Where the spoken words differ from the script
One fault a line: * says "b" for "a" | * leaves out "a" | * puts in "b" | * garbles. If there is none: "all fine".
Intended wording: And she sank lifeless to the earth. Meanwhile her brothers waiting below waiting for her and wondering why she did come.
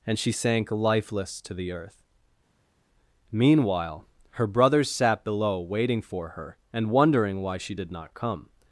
* says "sat" for "waiting"
* puts in "not"